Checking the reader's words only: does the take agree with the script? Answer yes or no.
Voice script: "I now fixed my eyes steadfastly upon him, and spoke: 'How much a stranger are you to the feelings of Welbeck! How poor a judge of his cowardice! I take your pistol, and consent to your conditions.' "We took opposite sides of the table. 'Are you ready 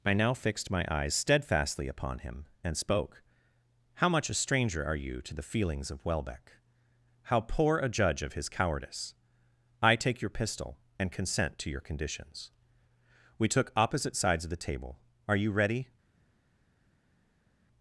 yes